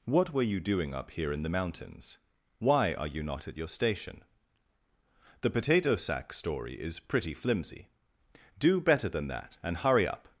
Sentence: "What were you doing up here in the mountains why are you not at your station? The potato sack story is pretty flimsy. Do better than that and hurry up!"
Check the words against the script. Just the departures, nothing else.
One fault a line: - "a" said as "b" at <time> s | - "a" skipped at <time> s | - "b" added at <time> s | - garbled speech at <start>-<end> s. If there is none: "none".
none